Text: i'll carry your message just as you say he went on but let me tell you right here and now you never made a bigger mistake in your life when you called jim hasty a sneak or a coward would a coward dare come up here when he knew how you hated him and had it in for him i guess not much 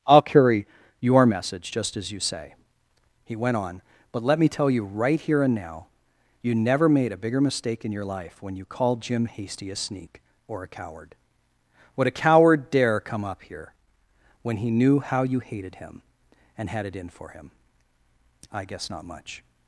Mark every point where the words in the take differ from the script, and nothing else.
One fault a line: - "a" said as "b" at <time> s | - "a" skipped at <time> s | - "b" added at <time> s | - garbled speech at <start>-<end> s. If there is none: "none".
none